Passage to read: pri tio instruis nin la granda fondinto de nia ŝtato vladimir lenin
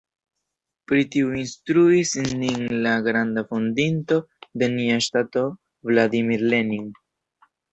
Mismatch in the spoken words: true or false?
false